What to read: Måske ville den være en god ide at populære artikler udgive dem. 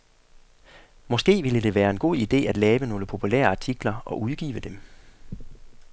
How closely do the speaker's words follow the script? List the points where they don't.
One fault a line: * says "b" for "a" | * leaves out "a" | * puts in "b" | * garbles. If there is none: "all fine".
* says "det" for "den"
* puts in "lave nogle"
* puts in "og"